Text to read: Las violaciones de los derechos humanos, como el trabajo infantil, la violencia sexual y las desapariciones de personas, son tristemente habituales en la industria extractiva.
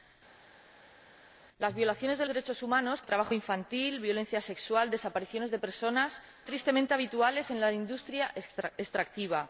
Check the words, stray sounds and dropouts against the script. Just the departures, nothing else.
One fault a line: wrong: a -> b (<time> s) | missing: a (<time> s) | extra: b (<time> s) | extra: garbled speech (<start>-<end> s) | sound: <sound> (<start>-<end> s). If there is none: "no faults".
missing: los (2.3 s)
missing: como (3.0 s)
missing: son (6.2 s)